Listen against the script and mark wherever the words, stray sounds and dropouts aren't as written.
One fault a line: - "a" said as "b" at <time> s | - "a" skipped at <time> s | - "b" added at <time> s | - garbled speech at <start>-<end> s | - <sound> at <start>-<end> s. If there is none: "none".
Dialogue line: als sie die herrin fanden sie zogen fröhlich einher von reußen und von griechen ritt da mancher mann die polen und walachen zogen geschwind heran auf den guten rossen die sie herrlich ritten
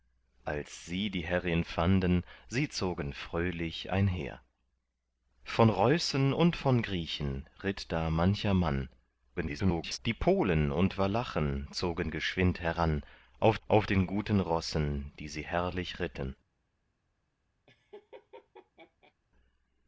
- garbled speech at 9.4-10.0 s
- "auf" added at 13.7 s
- laugh at 17.7-19.1 s